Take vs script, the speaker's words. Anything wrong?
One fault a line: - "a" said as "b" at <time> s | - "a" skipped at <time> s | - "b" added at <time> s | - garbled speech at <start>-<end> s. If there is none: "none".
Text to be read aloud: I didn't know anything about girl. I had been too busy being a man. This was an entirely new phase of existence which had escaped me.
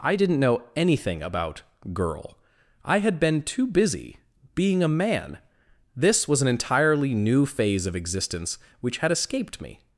none